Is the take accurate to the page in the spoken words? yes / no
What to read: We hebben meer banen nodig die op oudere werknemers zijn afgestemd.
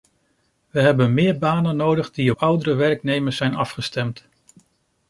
no